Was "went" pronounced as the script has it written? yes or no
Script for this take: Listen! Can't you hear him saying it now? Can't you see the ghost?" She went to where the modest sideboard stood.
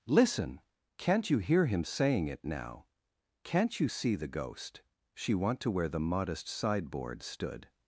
no